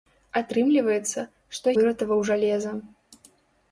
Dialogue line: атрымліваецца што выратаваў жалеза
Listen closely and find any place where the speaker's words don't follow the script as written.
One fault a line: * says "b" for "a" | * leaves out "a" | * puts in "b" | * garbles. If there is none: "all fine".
all fine